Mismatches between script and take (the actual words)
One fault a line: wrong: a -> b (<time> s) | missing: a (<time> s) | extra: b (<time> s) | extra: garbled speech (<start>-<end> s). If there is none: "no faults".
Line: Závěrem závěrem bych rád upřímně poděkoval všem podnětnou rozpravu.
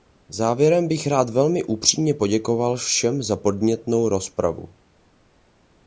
missing: závěrem (0.9 s)
extra: velmi (1.3 s)
extra: za (3.2 s)